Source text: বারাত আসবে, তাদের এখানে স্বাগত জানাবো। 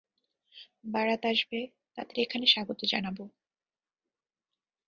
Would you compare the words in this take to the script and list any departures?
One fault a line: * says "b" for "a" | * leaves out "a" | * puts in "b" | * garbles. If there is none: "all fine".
all fine